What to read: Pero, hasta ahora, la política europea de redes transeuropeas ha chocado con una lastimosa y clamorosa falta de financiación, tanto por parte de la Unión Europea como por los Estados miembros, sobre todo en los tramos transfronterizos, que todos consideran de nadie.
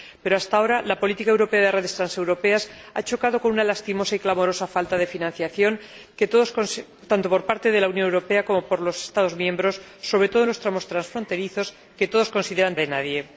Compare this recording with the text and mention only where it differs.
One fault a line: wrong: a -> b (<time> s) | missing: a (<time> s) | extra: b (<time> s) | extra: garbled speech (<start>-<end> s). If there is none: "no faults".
no faults